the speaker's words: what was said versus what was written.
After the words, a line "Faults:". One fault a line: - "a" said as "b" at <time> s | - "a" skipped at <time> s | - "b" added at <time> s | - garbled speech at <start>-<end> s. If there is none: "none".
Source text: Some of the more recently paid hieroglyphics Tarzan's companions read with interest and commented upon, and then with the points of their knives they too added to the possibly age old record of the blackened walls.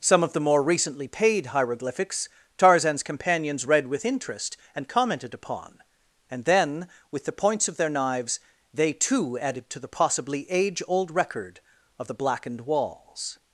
Some of the more recently paid hieroglyphics Tarzan's companions read with interest and commented upon, and then with the points of their knives they too added to the possibly age old record of the blackened walls.
Faults:
none